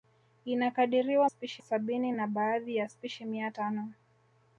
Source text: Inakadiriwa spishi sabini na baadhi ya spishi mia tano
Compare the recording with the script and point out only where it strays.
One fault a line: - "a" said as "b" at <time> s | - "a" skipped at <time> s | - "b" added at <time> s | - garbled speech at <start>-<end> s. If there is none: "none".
none